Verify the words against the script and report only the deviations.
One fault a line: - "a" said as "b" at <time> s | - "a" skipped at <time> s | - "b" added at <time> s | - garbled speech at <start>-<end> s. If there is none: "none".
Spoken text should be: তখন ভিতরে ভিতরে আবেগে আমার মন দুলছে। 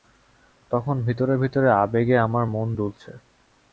none